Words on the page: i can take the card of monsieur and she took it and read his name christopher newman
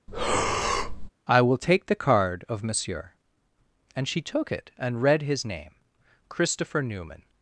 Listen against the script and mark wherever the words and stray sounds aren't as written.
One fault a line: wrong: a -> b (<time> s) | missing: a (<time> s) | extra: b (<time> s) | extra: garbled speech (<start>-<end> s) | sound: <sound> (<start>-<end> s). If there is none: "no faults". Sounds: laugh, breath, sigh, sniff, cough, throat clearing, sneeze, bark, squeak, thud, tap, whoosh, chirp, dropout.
sound: breath (0.1-1.1 s)
wrong: can -> will (1.4 s)